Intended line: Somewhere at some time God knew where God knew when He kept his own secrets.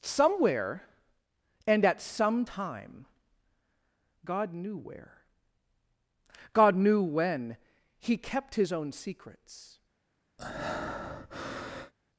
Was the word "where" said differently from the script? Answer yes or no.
no